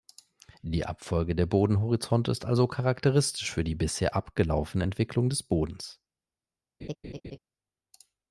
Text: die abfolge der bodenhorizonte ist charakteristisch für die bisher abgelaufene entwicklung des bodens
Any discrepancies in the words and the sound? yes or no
yes